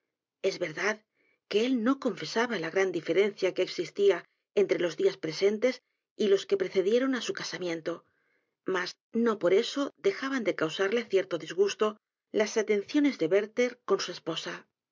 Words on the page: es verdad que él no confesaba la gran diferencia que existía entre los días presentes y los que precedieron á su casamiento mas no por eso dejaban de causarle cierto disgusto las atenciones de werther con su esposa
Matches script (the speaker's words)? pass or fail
pass